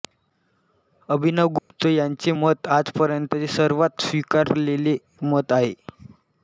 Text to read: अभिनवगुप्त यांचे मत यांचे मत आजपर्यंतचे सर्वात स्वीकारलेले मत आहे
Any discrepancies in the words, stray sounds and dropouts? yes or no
yes